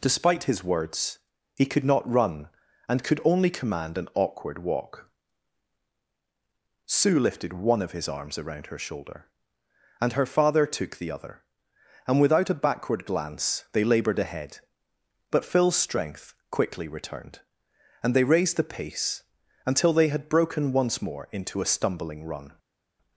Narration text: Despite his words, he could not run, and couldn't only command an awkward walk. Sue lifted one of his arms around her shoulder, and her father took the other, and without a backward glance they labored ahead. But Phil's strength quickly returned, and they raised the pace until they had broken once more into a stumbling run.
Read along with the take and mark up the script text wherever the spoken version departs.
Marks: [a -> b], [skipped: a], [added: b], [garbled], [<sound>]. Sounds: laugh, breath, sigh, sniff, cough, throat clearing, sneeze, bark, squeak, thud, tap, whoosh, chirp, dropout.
Despite his words, he could not run, and [couldn't -> could] only command an awkward walk. Sue lifted one of his arms around her shoulder, and her father took the other, and without a backward glance they labored ahead. But Phil's strength quickly returned, and they raised the pace until they had broken once more into a stumbling run.